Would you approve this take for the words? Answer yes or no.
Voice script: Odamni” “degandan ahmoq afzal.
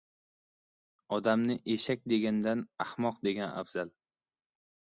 no